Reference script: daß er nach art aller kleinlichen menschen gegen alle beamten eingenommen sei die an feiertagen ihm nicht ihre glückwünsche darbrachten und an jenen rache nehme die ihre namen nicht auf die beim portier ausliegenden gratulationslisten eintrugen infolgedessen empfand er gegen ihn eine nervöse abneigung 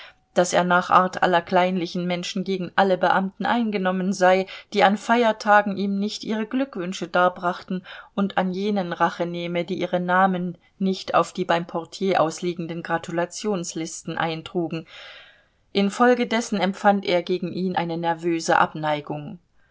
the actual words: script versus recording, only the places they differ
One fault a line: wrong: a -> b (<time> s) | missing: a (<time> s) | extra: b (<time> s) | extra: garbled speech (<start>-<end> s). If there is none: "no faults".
no faults